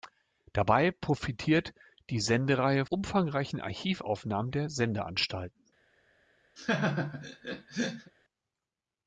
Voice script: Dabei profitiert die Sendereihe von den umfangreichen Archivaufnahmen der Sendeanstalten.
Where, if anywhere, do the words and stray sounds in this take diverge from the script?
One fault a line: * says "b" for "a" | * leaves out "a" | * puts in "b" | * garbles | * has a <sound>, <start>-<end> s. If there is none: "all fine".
* leaves out "von den"
* has a laugh, 6.6-8.1 s